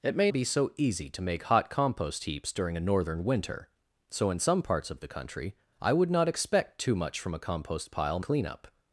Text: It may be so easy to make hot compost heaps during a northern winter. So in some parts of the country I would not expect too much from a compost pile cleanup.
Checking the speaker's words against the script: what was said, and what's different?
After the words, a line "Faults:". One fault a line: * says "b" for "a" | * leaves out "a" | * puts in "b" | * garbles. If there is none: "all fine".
It may be so easy to make hot compost heaps during a northern winter. So in some parts of the country I would not expect too much from a compost pile cleanup.
Faults:
all fine